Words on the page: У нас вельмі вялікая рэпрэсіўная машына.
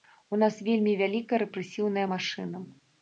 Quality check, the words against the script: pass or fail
pass